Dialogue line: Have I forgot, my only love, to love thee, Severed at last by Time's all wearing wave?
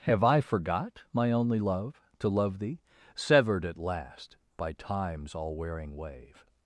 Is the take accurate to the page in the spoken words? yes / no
yes